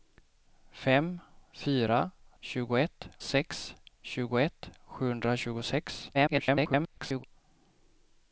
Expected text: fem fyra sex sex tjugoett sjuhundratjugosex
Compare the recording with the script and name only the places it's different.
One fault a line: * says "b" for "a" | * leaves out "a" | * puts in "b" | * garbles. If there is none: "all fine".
* says "tjugoett" for "sex"
* garbles